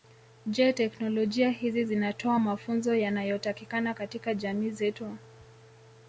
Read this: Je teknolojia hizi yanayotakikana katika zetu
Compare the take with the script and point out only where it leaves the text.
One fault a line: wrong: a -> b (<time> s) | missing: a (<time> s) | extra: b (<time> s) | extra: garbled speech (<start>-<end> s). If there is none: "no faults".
extra: zinatoa mafunzo (1.8 s)
extra: jamii (4.3 s)